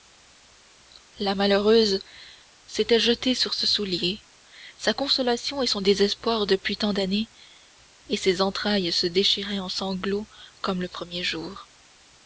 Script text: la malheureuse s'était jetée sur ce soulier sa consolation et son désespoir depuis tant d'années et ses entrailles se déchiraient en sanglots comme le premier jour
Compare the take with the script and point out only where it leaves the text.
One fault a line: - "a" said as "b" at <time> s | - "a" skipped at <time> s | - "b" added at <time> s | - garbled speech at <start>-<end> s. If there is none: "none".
none